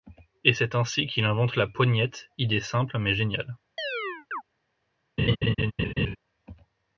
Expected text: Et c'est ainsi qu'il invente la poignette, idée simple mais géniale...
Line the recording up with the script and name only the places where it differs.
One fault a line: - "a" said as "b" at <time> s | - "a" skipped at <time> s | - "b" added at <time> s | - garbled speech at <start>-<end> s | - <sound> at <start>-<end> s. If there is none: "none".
- chirp at 3.8-4.4 s
- laugh at 5.2-6.2 s